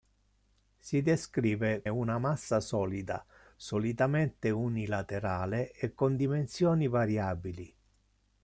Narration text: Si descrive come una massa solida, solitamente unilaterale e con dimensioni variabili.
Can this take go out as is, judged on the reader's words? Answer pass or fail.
fail